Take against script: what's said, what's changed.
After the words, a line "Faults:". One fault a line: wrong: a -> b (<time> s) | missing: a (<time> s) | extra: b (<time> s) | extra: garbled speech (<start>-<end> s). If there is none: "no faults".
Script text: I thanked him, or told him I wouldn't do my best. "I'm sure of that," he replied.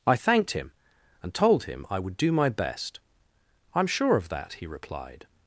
I thanked him, and told him I would do my best. "I'm sure of that," he replied.
Faults:
wrong: or -> and (1.2 s)
wrong: wouldn't -> would (2.0 s)